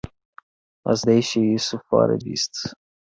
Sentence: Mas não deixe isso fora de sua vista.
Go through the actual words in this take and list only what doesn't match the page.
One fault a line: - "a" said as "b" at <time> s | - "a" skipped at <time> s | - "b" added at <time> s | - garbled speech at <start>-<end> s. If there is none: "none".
- "não" skipped at 1.0 s
- "sua" skipped at 2.2 s